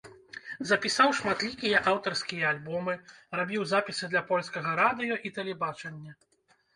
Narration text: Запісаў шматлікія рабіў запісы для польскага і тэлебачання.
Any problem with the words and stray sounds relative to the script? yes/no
yes